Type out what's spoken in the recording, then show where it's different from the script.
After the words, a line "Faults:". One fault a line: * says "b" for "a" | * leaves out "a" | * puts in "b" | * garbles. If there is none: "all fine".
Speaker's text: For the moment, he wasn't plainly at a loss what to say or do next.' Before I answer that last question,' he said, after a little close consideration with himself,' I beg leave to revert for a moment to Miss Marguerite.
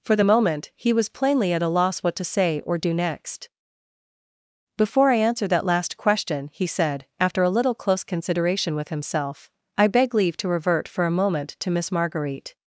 For the moment, he was plainly at a loss what to say or do next.' Before I answer that last question,' he said, after a little close consideration with himself,' I beg leave to revert for a moment to Miss Marguerite.
Faults:
* says "was" for "wasn't"